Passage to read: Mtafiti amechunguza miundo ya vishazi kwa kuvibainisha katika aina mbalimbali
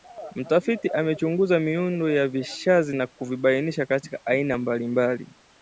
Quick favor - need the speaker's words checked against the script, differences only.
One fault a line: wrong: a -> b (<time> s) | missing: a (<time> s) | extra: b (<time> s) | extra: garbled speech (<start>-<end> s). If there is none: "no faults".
wrong: kwa -> na (2.9 s)